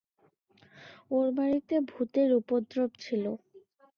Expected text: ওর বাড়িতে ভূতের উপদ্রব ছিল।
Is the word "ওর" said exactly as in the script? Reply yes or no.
yes